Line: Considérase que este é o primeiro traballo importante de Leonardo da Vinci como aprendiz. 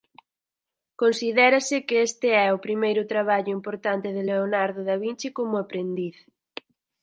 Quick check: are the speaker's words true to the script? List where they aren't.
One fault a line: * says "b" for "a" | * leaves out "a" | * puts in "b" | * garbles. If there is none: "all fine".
all fine